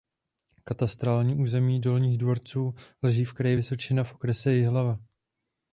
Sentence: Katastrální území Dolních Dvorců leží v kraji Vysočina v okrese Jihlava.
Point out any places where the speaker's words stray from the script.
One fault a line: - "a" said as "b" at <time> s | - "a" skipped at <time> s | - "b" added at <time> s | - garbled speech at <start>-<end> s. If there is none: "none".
none